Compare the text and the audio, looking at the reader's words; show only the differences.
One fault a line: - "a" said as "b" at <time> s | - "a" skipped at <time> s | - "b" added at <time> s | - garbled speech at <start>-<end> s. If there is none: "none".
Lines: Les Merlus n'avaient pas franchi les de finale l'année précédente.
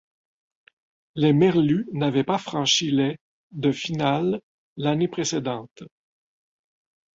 none